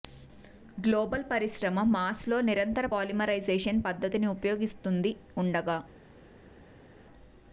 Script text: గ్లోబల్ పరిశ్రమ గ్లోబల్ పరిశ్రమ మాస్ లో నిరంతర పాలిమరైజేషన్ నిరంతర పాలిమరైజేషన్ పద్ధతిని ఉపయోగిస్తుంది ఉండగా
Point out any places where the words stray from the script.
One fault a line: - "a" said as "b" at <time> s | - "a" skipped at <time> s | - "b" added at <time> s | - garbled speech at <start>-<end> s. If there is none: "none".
- "గ్లోబల్ పరిశ్రమ" skipped at 1.8 s
- "నిరంతర పాలిమరైజేషన్" skipped at 3.8 s